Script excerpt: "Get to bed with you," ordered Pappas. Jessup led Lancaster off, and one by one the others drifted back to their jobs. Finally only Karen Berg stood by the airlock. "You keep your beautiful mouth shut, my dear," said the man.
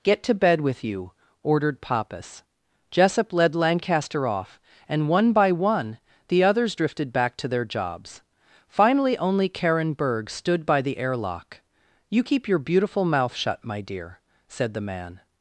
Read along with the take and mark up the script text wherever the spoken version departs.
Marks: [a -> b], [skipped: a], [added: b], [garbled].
"Get to bed with you," ordered Pappas. Jessup led Lancaster off, and one by one the others drifted back to their jobs. Finally only Karen Berg stood by the airlock. "You keep your beautiful mouth shut, my dear," said the man.